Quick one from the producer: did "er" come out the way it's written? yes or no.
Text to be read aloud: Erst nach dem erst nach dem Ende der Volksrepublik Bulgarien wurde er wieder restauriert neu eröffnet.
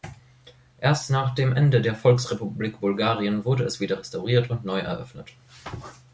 no